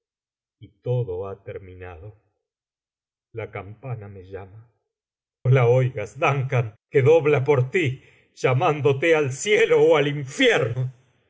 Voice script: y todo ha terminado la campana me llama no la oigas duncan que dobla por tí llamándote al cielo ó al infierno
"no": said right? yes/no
no